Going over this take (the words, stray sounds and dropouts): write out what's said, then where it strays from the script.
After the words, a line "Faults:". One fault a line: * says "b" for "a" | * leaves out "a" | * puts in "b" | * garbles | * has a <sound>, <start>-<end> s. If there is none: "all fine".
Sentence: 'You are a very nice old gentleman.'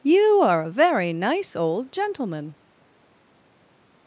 'You are a very nice old gentleman.'
Faults:
all fine